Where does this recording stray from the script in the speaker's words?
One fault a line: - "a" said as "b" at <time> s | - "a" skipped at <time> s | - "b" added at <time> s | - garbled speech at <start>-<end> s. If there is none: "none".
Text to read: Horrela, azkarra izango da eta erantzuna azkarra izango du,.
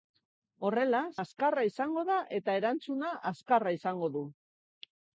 none